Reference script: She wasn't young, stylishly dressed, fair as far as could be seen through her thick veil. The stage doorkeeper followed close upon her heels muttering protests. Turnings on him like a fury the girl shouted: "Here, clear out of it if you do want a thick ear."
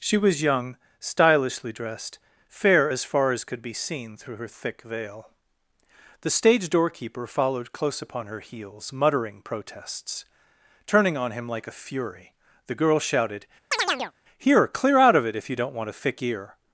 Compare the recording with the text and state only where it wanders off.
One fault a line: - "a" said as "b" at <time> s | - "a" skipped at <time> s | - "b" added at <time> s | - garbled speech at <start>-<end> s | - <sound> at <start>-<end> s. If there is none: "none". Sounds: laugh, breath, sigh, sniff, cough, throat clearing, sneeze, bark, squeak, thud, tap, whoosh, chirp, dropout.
- "wasn't" said as "was" at 0.2 s
- "Turnings" said as "Turning" at 10.9 s
- chirp at 13.7-14.1 s
- "do" said as "don't" at 15.5 s